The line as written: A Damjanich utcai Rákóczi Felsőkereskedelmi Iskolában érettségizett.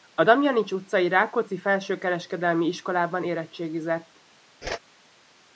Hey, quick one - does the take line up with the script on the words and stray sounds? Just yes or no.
no